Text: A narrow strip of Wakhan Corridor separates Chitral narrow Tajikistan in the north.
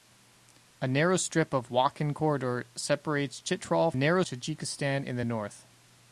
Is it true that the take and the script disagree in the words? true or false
false